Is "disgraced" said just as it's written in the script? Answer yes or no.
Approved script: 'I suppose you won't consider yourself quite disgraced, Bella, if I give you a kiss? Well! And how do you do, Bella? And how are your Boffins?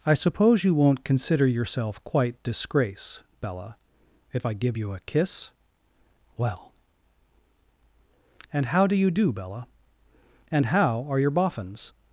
no